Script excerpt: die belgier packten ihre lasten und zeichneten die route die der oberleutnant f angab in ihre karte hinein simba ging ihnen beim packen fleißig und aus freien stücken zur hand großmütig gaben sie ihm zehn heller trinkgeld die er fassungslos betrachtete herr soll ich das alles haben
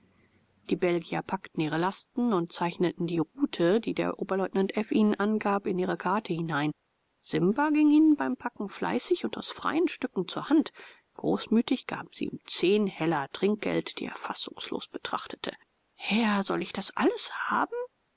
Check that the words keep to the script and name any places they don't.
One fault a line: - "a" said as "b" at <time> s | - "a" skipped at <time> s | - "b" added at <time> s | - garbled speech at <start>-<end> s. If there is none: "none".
- "ihnen" added at 4.9 s